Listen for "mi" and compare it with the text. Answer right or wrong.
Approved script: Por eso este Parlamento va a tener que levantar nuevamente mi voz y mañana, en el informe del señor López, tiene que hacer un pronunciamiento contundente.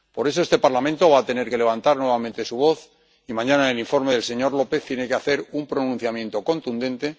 wrong